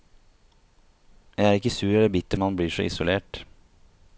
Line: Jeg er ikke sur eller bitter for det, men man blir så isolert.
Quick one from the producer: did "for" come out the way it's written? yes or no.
no